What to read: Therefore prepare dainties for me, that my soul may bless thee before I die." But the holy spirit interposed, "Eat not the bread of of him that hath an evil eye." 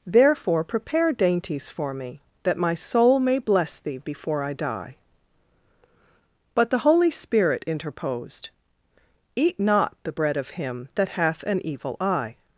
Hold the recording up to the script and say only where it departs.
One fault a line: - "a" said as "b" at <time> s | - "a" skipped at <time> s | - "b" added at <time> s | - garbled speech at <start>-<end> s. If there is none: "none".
- "of" skipped at 10.5 s